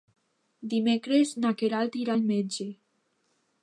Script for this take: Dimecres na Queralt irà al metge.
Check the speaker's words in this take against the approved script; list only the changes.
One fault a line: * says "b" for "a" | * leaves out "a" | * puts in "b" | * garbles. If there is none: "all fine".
all fine